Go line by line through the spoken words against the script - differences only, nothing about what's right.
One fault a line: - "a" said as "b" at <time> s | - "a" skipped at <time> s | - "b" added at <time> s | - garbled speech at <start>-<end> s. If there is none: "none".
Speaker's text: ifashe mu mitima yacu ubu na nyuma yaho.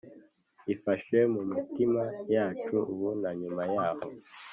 none